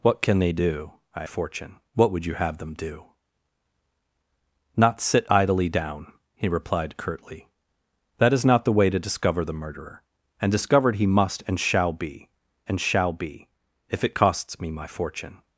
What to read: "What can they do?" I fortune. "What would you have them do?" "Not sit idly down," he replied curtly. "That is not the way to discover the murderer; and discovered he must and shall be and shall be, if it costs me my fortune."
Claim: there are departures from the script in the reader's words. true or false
false